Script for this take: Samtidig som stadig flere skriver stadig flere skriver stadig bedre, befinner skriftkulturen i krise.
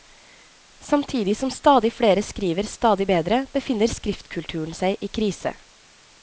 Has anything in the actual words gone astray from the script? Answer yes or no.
yes